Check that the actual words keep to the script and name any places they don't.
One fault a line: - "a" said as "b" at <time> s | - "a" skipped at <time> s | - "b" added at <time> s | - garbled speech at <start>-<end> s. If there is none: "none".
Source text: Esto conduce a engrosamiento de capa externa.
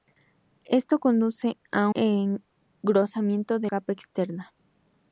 none